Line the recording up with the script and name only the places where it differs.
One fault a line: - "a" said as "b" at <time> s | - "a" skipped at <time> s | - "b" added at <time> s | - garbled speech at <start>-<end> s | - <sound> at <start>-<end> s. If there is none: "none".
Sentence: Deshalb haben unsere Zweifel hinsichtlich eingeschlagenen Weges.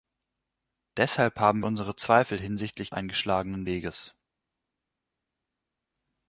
none